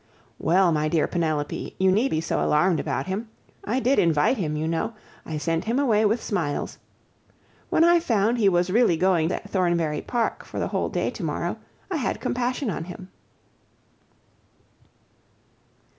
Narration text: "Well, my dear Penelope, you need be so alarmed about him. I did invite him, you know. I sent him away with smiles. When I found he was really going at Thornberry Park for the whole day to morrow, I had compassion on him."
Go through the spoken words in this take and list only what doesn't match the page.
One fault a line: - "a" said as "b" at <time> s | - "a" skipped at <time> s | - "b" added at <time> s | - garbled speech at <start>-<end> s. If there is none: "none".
none